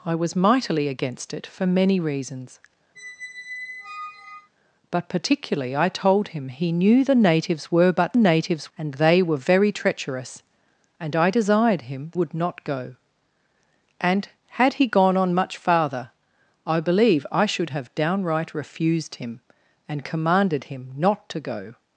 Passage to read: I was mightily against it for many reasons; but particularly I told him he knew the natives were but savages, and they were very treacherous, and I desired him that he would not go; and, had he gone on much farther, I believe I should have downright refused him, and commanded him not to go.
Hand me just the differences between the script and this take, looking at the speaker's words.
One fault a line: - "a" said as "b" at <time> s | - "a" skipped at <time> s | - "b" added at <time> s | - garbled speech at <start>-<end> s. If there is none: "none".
- "savages" said as "natives" at 8.2 s
- "that he" skipped at 12.1 s